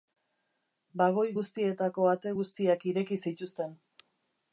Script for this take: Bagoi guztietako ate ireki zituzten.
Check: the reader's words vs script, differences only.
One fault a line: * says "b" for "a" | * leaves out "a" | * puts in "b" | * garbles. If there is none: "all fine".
* puts in "guztiak"